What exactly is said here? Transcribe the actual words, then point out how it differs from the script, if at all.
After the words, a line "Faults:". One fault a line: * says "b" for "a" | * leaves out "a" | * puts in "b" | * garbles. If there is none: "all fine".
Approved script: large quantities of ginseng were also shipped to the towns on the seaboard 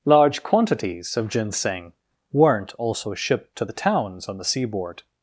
large quantities of ginseng weren't also shipped to the towns on the seaboard
Faults:
* says "weren't" for "were"